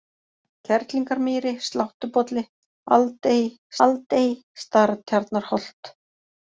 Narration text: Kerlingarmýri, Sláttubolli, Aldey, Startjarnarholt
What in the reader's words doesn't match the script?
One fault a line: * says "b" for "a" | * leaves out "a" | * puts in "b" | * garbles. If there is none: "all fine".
* puts in "Aldey"